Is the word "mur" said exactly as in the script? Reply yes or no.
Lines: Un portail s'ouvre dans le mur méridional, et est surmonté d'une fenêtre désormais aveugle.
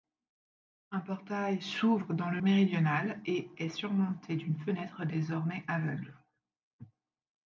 no